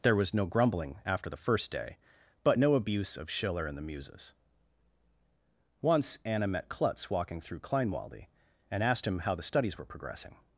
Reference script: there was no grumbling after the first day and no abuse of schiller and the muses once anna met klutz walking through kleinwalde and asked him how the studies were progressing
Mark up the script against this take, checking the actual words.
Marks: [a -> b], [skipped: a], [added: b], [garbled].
there was no grumbling after the first day [and -> but] no abuse of schiller and the muses once anna met klutz walking through kleinwalde and asked him how the studies were progressing